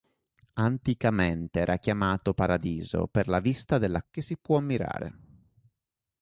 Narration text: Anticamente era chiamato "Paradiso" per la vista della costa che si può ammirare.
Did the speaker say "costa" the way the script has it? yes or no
no